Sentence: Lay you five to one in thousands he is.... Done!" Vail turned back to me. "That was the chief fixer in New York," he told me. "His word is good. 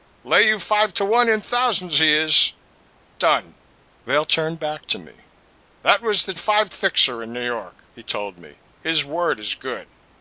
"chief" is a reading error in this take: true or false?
true